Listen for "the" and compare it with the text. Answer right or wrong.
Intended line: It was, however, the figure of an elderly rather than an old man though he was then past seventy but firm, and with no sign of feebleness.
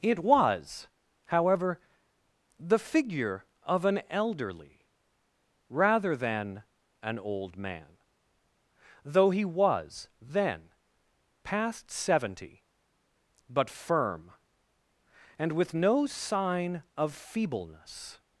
right